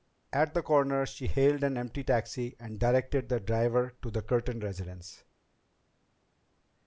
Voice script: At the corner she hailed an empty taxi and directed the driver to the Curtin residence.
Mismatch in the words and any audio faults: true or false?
false